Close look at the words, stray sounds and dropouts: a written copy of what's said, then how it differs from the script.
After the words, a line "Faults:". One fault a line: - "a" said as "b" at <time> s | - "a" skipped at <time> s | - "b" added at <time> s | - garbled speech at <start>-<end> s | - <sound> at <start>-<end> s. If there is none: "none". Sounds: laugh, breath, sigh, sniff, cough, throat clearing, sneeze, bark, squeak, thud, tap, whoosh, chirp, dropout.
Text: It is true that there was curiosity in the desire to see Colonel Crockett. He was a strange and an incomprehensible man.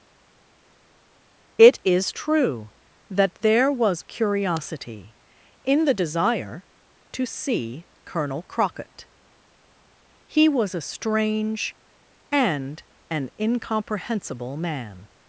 It is true that there was curiosity in the desire to see Colonel Crockett. He was a strange and an incomprehensible man.
Faults:
none